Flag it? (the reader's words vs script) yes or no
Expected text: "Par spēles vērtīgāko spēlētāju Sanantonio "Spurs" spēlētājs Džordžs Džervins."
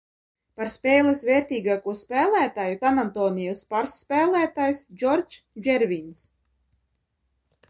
no